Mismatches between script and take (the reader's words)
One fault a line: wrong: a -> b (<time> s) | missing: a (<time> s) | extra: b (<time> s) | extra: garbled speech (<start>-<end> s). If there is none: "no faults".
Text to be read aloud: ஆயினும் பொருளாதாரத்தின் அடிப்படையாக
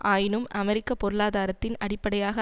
extra: அமெரிக்க (0.5 s)